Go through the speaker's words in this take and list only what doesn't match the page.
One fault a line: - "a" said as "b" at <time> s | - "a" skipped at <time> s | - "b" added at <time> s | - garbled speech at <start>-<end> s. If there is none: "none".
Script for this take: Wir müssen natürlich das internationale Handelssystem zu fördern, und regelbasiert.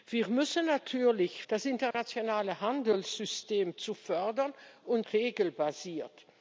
none